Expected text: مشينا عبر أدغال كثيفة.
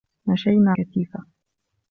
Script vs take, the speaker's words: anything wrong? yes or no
yes